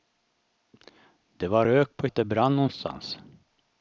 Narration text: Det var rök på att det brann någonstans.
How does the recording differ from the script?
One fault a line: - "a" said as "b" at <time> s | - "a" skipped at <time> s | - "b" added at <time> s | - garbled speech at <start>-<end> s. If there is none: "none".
none